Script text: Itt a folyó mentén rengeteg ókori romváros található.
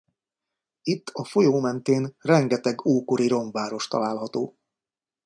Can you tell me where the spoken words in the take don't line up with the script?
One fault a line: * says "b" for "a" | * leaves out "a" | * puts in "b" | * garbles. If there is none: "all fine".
all fine